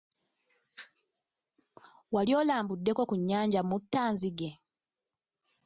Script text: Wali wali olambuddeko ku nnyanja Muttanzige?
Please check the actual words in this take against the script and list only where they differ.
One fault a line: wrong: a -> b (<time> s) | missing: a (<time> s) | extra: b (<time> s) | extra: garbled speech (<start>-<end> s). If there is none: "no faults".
missing: wali (2.3 s)